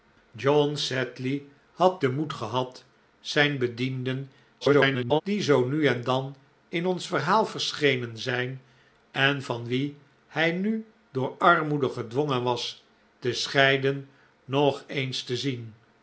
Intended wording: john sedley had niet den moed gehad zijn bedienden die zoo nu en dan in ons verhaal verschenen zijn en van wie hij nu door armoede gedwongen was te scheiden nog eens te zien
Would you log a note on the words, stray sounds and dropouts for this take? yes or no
yes